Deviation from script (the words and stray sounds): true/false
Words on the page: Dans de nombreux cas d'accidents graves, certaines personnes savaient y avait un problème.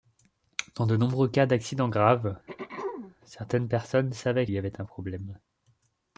true